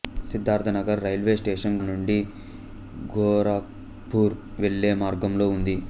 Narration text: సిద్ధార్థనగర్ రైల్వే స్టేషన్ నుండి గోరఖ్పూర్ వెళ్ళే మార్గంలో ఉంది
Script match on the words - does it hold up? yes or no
yes